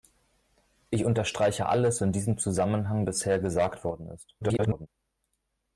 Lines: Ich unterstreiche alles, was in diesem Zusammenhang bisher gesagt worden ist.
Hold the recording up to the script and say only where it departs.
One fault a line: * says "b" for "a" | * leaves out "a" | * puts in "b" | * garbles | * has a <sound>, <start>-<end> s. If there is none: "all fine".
* leaves out "was"
* garbles